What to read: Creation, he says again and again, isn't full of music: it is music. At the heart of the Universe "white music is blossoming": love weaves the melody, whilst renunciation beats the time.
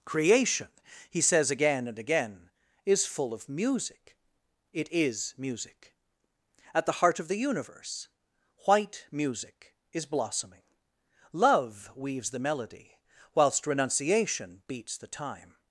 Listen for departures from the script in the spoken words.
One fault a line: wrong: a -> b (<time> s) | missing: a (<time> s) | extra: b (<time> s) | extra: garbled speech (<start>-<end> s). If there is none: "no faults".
wrong: isn't -> is (2.9 s)